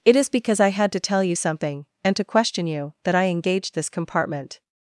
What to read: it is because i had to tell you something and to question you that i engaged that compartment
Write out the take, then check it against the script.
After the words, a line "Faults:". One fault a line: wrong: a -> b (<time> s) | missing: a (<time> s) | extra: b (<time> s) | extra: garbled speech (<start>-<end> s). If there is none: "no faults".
it is because i had to tell you something and to question you that i engaged this compartment
Faults:
wrong: that -> this (3.7 s)